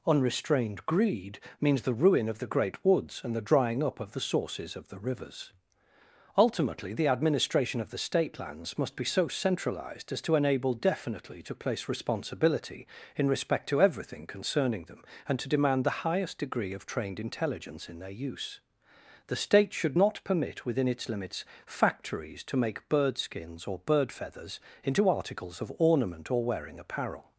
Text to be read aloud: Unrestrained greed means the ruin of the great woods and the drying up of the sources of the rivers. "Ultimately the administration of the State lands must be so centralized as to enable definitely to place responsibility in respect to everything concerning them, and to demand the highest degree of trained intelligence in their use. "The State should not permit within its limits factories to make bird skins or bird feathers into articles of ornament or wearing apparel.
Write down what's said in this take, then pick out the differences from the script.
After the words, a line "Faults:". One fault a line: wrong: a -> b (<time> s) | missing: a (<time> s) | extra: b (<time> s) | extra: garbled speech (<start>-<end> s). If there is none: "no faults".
Unrestrained greed means the ruin of the great woods and the drying up of the sources of the rivers. "Ultimately the administration of the State lands must be so centralized as to enable definitely to place responsibility in respect to everything concerning them, and to demand the highest degree of trained intelligence in their use. "The State should not permit within its limits factories to make bird skins or bird feathers into articles of ornament or wearing apparel.
Faults:
no faults